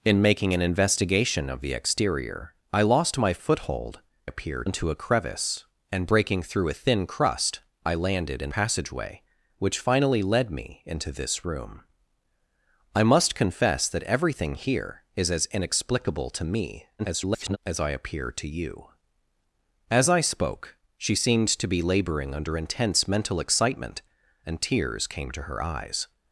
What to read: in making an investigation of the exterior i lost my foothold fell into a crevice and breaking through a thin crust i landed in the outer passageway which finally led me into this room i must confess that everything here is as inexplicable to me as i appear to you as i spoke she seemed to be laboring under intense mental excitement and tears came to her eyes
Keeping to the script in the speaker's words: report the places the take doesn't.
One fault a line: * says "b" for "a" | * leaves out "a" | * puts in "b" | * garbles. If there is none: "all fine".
* says "appear" for "fell"
* leaves out "the outer"
* garbles